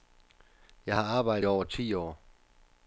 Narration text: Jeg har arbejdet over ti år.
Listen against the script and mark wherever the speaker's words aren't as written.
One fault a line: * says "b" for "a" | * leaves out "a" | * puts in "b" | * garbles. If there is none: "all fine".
all fine